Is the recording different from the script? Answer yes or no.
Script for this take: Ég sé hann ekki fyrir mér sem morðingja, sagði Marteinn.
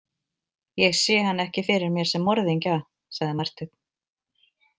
no